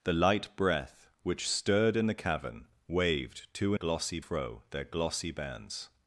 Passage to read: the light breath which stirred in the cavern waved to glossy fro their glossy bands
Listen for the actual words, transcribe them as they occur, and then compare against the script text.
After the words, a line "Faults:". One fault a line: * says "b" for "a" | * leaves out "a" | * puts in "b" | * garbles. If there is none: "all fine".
the light breath which stirred in the cavern waved to glossy fro their glossy bands
Faults:
all fine